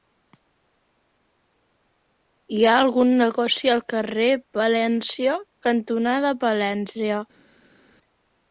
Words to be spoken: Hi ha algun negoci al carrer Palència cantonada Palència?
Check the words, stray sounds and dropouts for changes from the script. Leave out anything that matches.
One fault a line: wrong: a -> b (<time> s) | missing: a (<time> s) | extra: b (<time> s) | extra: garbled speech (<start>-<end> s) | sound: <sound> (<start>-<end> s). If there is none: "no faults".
no faults